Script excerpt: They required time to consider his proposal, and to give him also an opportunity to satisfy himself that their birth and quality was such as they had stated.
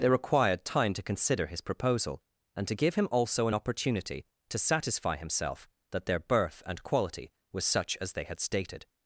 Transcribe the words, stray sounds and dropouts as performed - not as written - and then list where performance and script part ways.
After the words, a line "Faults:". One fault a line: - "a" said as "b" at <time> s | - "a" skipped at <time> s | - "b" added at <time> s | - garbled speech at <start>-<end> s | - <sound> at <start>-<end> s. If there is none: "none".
They required time to consider his proposal, and to give him also an opportunity to satisfy himself that their birth and quality was such as they had stated.
Faults:
none